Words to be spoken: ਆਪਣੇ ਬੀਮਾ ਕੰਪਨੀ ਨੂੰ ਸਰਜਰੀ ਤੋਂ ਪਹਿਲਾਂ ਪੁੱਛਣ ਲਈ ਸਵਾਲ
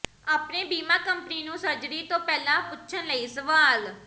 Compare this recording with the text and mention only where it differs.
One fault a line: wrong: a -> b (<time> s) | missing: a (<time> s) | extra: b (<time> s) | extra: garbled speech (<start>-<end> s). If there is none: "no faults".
no faults